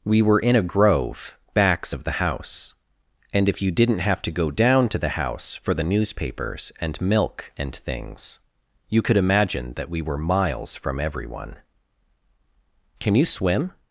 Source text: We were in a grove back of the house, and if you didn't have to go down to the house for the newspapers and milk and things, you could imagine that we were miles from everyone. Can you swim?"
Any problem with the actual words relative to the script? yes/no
yes